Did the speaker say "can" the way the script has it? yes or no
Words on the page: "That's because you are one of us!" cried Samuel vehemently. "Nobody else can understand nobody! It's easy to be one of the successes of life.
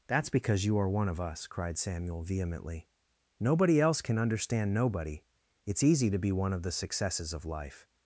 yes